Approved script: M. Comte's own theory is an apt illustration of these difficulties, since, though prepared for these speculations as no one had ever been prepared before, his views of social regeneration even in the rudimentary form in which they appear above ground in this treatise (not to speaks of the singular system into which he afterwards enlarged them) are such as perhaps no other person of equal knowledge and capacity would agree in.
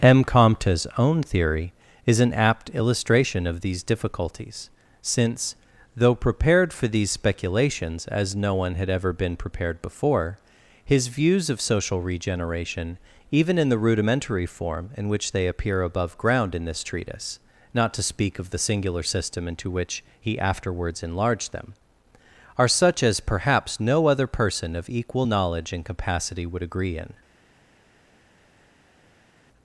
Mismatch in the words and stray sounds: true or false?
true